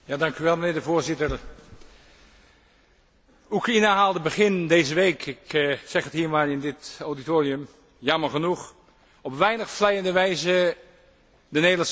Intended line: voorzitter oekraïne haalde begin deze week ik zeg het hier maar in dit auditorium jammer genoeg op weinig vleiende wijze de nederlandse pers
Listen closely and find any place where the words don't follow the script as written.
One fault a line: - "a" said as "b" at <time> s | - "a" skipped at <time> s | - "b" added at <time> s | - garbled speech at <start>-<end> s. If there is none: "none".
none